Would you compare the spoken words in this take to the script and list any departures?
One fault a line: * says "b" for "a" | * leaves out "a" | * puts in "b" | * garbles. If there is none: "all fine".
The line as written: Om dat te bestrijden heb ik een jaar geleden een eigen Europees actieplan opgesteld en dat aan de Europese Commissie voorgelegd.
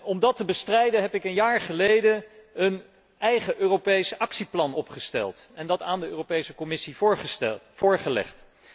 all fine